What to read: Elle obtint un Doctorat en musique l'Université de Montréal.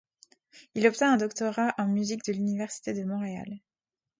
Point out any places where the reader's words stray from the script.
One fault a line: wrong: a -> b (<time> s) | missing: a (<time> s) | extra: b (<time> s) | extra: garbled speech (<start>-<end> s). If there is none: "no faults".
wrong: Elle -> Il (0.7 s)
extra: de (2.2 s)